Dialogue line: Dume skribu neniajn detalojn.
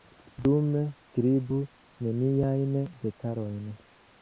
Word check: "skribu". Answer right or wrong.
right